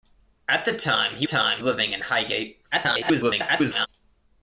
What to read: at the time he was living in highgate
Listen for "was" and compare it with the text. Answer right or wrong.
wrong